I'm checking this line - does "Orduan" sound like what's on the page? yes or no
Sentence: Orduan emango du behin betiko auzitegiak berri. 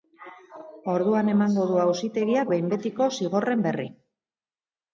yes